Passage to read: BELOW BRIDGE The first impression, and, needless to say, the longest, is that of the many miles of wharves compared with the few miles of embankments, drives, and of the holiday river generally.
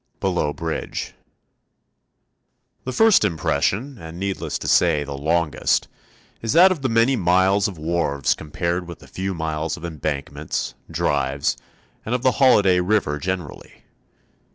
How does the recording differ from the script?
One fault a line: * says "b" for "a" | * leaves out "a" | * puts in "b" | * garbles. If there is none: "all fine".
all fine